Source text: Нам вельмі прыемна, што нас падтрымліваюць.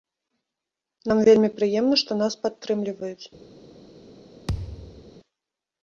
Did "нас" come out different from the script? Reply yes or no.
no